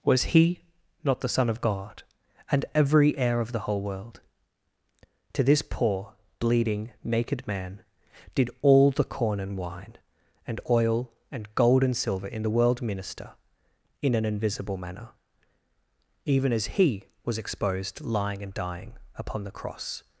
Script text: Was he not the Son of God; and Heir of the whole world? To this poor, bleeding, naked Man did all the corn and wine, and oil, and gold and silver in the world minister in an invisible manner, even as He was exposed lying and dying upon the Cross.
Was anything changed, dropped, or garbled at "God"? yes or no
no